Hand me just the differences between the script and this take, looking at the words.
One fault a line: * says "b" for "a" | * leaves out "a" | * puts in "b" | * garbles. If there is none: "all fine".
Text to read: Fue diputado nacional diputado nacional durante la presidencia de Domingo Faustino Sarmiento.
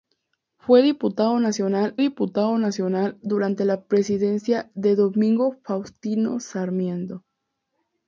all fine